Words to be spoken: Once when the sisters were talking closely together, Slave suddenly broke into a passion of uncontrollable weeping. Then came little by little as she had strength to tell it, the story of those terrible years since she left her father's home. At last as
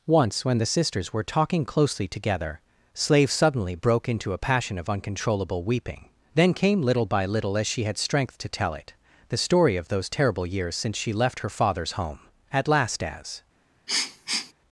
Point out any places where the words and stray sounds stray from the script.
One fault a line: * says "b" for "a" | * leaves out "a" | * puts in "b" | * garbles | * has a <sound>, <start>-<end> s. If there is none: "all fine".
* has a sniff, 13.9-14.5 s